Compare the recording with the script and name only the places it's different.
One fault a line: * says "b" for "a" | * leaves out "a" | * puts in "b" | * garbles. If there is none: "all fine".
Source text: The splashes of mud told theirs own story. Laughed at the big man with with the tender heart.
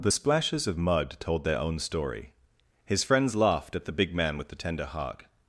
* says "their" for "theirs"
* puts in "His friends"
* leaves out "with"